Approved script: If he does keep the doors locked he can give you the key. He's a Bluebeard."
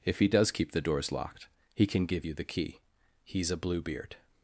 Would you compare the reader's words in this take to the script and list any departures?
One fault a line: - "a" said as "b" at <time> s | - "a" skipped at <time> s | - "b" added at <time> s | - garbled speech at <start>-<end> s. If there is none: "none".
none